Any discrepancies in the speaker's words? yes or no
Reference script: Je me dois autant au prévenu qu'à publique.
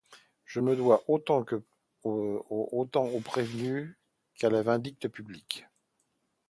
yes